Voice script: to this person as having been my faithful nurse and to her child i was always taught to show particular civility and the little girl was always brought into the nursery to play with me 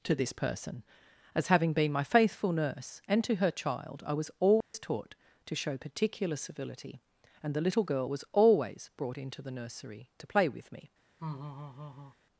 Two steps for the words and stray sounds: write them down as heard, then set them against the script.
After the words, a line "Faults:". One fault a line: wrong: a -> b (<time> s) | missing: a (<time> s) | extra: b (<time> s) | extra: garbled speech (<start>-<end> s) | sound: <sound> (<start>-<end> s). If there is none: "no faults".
to this person as having been my faithful nurse and to her child i was always taught to show particular civility and the little girl was always brought into the nursery to play with me
Faults:
sound: dropout (4.6-4.7 s)
sound: laugh (11.2-12.2 s)